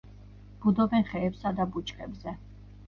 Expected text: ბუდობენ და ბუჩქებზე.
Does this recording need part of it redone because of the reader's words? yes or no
yes